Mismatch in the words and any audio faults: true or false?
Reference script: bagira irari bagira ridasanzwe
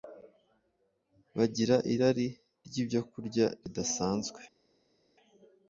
true